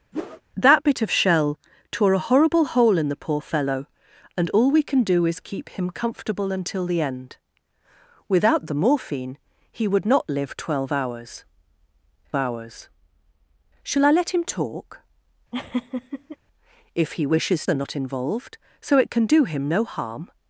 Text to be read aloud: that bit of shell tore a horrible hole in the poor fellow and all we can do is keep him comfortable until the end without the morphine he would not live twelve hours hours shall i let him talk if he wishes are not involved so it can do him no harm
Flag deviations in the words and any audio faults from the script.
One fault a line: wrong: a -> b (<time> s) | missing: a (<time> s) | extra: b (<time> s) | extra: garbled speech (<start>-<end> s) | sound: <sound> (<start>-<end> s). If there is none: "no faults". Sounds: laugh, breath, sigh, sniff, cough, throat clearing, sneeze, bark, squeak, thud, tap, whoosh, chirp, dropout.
sound: whoosh (0.1-0.4 s)
sound: laugh (15.5-16.4 s)